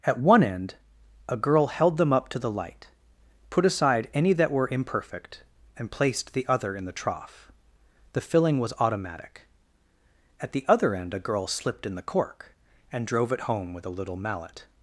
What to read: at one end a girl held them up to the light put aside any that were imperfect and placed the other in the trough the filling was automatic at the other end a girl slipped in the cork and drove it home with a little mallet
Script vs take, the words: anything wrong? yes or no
no